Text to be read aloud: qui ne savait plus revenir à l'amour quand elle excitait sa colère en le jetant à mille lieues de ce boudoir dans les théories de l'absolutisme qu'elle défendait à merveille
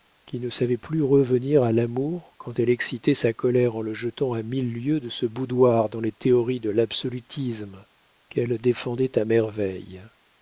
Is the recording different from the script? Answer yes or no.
no